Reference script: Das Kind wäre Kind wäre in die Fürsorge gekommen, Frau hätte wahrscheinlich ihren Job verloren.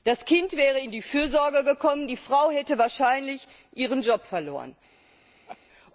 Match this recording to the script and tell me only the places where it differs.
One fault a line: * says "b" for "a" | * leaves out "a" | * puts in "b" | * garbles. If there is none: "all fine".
* leaves out "Kind wäre"
* puts in "die"